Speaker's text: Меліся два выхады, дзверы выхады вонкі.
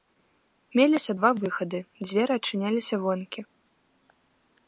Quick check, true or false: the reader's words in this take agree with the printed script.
false